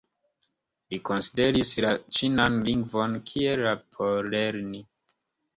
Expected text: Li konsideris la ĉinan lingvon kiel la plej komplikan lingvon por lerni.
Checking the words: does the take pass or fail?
fail